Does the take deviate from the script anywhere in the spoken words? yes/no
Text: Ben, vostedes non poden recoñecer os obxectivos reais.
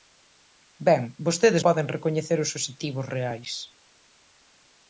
yes